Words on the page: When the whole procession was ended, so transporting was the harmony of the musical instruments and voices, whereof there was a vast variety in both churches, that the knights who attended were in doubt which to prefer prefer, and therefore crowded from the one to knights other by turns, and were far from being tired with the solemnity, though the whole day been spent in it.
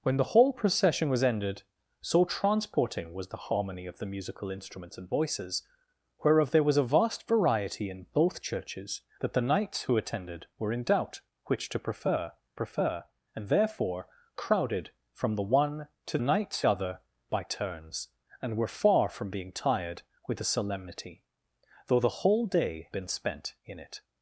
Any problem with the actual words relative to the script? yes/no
no